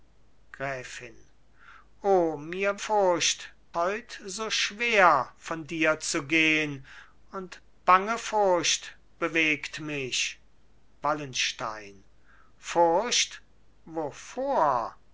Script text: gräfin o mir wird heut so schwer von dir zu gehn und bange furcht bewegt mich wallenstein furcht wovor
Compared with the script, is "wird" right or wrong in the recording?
wrong